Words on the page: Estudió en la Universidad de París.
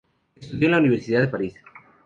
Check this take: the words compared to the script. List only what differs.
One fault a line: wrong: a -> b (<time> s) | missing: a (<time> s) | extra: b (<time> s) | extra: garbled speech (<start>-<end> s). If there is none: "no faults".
no faults